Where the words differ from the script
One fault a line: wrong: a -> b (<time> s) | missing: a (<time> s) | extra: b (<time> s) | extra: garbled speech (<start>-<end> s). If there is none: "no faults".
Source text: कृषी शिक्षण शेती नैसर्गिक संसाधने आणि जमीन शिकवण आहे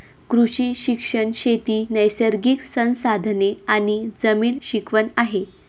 no faults